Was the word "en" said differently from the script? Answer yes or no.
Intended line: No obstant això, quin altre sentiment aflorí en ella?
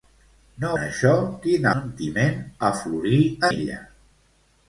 yes